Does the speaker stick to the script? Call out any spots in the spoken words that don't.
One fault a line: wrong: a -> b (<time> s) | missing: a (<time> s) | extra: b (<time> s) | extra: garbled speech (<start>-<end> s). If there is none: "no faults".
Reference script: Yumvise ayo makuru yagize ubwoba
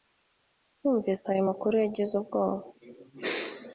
no faults